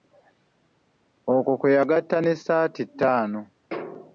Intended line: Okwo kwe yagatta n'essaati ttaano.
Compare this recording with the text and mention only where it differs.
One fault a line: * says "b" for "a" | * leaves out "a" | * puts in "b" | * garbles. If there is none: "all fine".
all fine